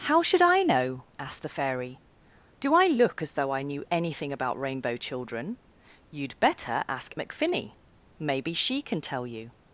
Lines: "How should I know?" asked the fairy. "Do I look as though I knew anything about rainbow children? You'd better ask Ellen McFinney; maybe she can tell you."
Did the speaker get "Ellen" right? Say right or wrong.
wrong